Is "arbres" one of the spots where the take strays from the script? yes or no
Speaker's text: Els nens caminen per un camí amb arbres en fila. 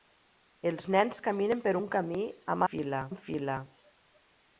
yes